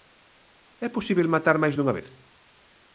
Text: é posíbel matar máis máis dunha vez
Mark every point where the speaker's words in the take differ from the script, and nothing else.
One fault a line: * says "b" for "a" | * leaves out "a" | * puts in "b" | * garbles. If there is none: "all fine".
* leaves out "máis"